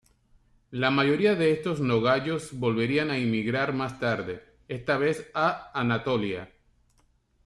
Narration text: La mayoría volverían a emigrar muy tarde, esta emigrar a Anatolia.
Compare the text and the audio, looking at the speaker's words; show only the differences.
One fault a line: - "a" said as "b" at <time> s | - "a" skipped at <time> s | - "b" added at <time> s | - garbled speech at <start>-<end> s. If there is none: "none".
- "de estos nogayos" added at 1.4 s
- "muy" said as "más" at 3.7 s
- "emigrar" said as "vez" at 5.0 s